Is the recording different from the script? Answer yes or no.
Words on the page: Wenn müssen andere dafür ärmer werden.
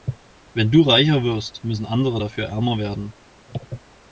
yes